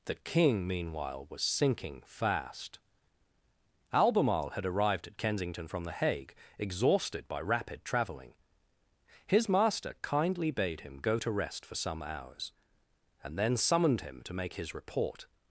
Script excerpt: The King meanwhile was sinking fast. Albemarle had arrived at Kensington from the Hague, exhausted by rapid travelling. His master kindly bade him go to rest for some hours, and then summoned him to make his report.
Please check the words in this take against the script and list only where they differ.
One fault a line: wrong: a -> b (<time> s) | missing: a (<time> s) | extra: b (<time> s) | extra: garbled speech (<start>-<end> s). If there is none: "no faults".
no faults